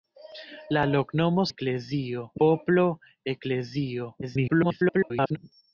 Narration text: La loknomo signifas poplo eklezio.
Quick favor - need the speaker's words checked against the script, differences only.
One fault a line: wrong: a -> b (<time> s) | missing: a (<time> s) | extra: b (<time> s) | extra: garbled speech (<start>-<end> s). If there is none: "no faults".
wrong: signifas -> eklezio (1.5 s)
extra: garbled speech (4.2-5.4 s)